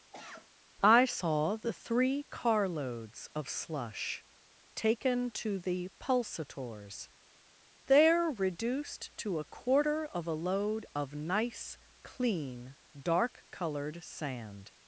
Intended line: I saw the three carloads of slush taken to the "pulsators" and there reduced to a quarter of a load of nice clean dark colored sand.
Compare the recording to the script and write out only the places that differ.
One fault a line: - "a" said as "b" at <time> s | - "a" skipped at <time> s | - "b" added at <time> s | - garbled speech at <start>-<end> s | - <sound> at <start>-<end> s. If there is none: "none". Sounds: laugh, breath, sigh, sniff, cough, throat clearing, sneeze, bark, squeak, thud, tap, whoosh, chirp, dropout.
- cough at 0.1-0.5 s
- "and" skipped at 7.1 s